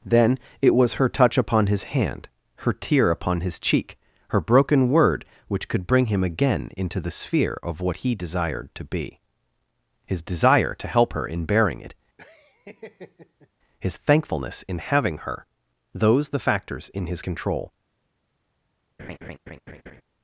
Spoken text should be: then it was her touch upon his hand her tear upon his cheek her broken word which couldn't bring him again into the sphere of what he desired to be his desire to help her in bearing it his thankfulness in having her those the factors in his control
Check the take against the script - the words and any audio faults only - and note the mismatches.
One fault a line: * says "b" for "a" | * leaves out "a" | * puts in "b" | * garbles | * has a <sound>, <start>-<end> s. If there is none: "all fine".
* says "could" for "couldn't"
* has a laugh, 12.2-13.5 s
* has a laugh, 19.0-20.0 s